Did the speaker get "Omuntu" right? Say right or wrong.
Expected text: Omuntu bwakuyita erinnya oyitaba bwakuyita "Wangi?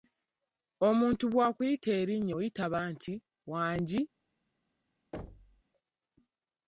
right